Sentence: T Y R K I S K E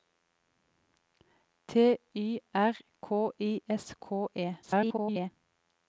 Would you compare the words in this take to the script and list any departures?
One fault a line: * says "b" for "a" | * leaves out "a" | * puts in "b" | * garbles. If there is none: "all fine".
* garbles